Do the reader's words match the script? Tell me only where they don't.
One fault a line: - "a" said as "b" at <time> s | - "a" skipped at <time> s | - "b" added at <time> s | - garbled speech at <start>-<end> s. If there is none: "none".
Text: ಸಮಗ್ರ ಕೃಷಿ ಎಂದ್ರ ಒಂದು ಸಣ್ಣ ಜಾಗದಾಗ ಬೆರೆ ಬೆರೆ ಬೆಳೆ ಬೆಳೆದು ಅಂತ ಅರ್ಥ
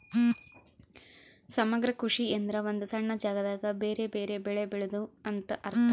none